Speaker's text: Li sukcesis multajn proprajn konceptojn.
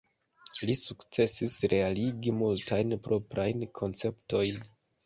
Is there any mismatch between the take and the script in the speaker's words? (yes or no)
yes